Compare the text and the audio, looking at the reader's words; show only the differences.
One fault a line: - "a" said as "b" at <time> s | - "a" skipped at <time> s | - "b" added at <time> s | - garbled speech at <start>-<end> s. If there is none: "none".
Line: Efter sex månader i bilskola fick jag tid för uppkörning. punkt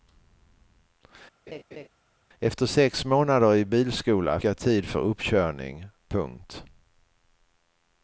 - "fick" skipped at 4.4 s